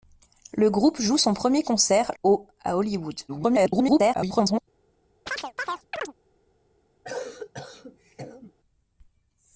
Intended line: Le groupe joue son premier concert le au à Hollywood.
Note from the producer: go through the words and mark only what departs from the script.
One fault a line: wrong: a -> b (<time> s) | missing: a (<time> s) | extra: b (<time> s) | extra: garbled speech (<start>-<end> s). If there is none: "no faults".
missing: le (2.1 s)
extra: garbled speech (3.3-4.6 s)